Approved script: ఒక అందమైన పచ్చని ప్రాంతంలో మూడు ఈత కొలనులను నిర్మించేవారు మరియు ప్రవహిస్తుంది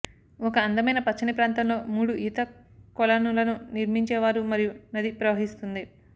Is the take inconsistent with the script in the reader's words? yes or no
yes